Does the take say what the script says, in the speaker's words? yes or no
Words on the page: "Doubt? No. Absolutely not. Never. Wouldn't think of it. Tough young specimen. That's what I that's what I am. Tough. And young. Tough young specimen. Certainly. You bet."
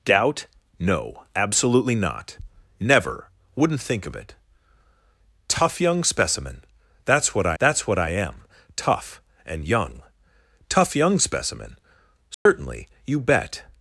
yes